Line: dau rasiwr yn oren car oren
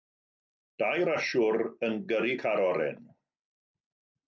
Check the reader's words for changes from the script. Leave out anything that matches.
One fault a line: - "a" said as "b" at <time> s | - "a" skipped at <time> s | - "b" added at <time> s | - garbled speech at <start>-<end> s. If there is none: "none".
- "oren" said as "gyrru" at 2.1 s